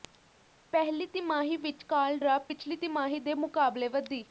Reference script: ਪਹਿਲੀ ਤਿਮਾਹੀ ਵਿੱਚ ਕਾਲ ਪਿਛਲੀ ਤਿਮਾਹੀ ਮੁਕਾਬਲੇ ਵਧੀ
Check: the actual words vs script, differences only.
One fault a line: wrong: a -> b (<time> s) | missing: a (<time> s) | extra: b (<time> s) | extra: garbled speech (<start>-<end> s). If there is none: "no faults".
extra: ਡਰਾਪ (2.2 s)
extra: ਦੇ (3.2 s)